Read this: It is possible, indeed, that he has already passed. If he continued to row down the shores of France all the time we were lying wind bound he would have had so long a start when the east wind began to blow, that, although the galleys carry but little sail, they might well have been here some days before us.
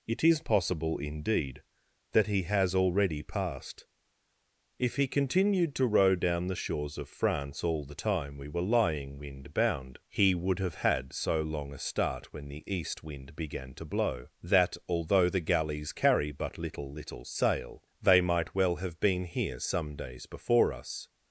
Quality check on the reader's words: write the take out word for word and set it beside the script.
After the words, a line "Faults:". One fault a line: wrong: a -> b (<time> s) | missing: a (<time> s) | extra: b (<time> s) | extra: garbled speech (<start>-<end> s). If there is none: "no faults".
It is possible, indeed, that he has already passed. If he continued to row down the shores of France all the time we were lying wind bound he would have had so long a start when the east wind began to blow, that, although the galleys carry but little little sail, they might well have been here some days before us.
Faults:
extra: little (16.9 s)